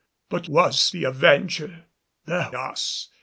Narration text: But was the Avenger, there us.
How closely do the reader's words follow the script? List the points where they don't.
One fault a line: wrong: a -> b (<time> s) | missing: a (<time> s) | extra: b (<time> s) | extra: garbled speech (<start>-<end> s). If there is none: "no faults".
no faults